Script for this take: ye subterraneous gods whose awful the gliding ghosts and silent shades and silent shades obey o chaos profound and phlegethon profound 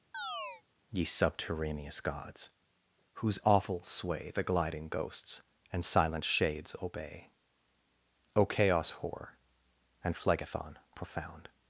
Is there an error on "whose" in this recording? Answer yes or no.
no